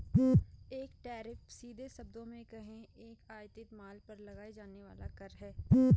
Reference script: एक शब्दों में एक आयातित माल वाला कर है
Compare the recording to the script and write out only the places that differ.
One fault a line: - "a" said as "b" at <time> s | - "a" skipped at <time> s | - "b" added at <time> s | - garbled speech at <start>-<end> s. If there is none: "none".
- "टैरिफ सीधे" added at 1.0 s
- "कहें" added at 2.4 s
- "पर लगाया जाने" added at 4.1 s